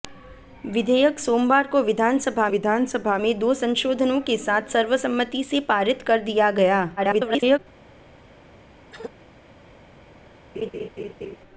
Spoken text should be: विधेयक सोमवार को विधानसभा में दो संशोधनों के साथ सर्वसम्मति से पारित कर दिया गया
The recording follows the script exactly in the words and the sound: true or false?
false